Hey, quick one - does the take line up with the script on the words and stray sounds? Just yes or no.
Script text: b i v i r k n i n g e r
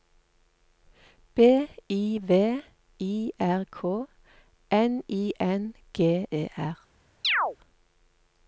no